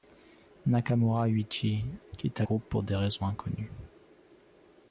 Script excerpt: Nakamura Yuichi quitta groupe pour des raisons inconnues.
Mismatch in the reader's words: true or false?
false